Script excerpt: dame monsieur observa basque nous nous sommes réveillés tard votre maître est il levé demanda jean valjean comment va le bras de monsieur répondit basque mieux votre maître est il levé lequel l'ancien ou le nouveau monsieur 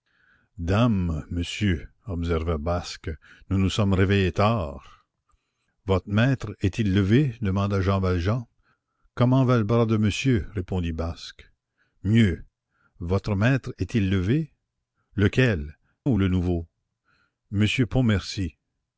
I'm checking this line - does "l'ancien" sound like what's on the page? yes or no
no